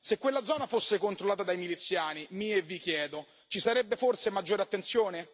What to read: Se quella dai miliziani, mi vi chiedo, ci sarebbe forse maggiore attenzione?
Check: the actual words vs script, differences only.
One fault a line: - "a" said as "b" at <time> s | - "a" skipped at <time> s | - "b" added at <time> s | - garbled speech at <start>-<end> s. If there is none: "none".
- "zona fosse controllata" added at 0.4 s
- "e" added at 2.5 s